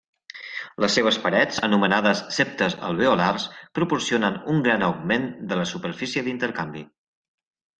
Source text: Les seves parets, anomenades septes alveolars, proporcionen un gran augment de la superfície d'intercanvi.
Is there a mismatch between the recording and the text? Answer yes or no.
no